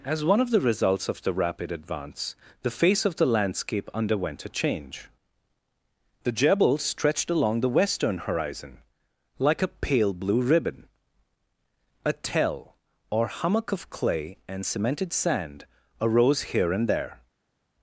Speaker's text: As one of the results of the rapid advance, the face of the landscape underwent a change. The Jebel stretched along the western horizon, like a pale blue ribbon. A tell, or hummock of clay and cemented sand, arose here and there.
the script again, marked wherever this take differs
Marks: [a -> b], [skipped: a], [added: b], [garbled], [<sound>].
As one of the results of the rapid advance, the face of the landscape underwent a change. The Jebel stretched along the western horizon, like a pale blue ribbon. A tell, or hummock of clay and cemented sand, arose here and there.